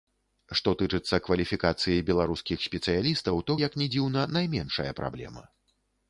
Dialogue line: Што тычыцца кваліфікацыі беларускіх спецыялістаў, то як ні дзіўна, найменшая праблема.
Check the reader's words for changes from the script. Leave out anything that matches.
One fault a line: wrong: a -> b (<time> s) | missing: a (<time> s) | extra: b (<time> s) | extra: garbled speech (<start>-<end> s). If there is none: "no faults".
no faults